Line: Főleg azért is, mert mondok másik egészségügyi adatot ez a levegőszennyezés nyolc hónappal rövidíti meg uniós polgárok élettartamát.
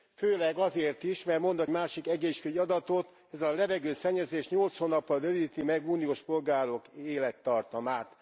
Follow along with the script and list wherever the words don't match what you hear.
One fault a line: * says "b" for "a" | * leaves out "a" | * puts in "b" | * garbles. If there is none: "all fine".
all fine